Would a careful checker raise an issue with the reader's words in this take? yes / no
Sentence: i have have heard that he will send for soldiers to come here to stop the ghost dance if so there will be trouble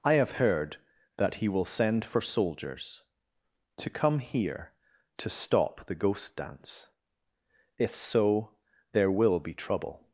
yes